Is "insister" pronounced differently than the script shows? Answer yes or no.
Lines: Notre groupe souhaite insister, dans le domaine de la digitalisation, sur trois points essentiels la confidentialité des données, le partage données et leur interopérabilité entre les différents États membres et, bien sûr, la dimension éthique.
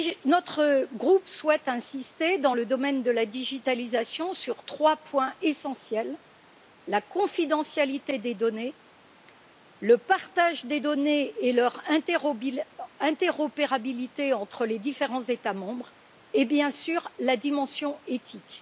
no